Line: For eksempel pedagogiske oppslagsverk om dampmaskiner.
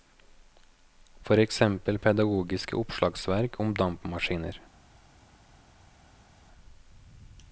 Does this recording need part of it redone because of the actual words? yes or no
no